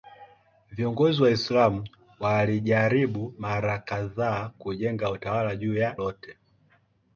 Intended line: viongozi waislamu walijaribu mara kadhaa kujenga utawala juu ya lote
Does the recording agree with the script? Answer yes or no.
yes